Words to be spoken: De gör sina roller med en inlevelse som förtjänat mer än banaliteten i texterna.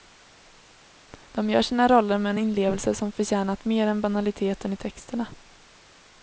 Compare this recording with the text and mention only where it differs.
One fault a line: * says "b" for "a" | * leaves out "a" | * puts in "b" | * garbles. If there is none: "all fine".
all fine